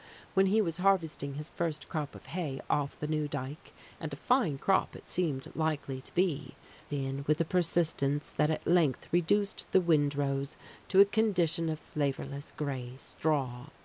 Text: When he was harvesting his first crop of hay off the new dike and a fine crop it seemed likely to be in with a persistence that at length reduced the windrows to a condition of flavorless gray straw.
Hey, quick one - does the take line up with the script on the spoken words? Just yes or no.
yes